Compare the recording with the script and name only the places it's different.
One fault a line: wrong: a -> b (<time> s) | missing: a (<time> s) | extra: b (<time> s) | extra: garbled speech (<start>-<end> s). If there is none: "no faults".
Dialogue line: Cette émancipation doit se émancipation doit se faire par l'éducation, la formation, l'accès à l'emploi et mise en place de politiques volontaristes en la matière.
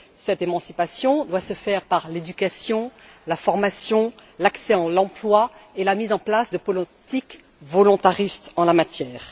missing: émancipation doit se (1.5 s)
extra: la (5.8 s)